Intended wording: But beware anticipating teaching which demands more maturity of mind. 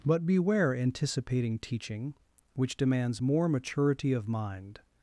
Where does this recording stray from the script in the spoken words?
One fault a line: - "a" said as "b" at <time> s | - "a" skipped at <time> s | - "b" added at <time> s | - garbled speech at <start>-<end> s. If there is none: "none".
none